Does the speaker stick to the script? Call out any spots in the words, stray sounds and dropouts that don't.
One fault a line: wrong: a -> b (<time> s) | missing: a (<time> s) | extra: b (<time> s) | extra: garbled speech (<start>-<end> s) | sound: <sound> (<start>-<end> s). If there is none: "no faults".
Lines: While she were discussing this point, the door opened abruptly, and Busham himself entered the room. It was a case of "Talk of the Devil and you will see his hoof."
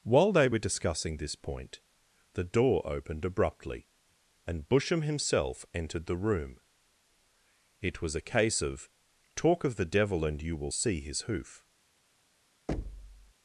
wrong: she -> they (0.3 s)
sound: thud (12.7-13.3 s)